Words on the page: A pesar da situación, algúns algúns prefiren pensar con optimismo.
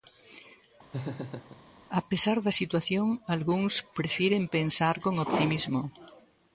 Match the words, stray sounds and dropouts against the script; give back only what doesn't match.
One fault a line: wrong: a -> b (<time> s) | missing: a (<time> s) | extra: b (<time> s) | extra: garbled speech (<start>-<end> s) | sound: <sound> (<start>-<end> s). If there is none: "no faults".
sound: laugh (0.9-1.6 s)
missing: algúns (3.7 s)